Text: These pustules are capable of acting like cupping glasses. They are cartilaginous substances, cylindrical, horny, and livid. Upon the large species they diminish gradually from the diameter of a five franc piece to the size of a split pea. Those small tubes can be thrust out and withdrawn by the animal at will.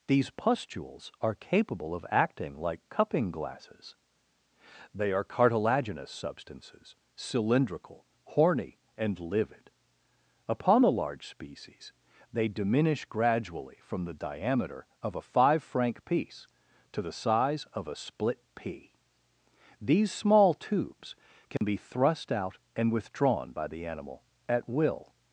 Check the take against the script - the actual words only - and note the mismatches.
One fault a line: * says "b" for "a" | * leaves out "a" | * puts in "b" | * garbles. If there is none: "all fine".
* says "These" for "Those"